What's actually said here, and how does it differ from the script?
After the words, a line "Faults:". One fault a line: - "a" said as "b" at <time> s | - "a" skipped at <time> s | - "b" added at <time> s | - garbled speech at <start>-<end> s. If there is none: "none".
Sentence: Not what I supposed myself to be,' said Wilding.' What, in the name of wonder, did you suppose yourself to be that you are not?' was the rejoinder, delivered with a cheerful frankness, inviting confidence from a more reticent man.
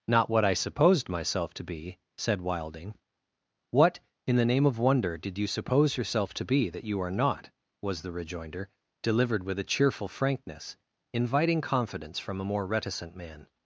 Not what I supposed myself to be,' said Wilding.' What, in the name of wonder, did you suppose yourself to be that you are not?' was the rejoinder, delivered with a cheerful frankness, inviting confidence from a more reticent man.
Faults:
none